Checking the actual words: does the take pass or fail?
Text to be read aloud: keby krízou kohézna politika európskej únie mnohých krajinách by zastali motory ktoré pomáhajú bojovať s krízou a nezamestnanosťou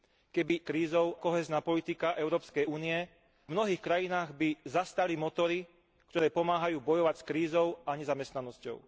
pass